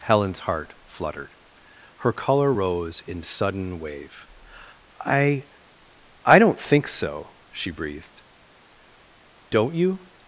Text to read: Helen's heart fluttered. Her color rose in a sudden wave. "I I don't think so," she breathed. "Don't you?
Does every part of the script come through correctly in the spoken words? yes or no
no